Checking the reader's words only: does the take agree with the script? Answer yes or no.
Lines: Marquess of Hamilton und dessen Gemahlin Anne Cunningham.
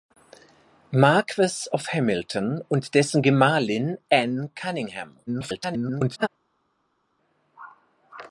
no